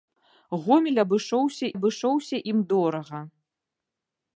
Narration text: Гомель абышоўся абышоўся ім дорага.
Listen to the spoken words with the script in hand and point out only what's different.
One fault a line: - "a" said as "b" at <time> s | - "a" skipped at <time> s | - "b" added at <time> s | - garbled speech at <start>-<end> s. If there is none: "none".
none